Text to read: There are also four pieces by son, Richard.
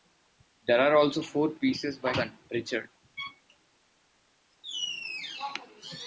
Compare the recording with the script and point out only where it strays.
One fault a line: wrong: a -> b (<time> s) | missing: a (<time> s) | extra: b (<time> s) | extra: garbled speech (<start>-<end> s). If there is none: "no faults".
no faults